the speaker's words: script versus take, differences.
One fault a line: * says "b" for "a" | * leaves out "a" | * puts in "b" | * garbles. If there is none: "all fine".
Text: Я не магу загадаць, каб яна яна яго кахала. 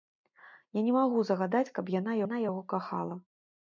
all fine